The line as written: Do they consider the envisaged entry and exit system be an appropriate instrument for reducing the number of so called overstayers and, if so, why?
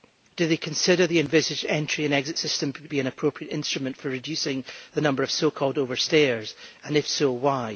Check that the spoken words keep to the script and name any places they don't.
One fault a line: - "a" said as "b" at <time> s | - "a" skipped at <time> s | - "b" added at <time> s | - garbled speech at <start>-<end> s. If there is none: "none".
none